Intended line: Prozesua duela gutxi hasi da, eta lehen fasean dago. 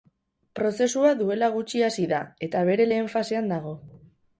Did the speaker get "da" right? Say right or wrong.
right